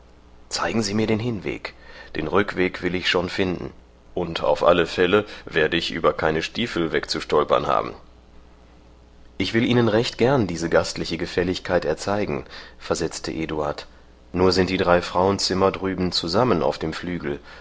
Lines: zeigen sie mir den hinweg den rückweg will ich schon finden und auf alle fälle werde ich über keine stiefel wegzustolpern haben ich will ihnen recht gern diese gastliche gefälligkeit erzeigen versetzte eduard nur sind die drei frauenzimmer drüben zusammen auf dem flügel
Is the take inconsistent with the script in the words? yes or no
no